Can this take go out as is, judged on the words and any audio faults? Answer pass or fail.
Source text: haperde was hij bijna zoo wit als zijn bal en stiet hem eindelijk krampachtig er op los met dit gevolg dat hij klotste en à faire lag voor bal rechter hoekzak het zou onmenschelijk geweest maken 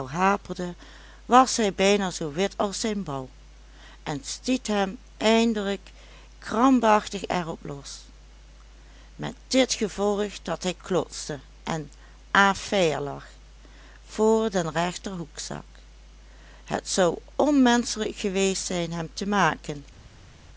fail